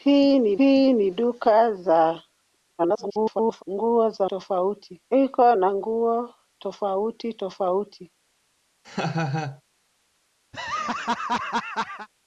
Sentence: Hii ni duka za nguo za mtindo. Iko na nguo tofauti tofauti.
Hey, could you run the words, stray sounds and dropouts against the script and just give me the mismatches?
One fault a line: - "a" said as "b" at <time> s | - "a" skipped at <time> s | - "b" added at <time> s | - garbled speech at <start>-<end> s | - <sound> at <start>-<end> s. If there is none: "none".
- "hii ni" added at 0.6 s
- garbled speech at 2.8-3.6 s
- "mtindo" said as "tofauti" at 4.2 s
- laugh at 8.8-9.6 s
- laugh at 10.5-12.1 s